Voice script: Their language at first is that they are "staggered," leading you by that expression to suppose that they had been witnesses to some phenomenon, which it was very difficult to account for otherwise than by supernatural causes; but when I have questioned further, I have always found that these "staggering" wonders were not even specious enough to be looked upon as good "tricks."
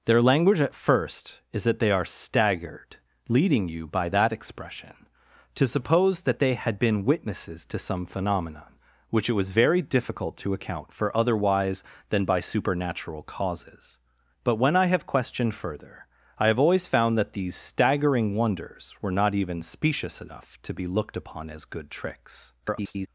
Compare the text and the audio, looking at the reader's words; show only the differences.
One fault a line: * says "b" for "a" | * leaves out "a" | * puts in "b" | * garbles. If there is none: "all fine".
* garbles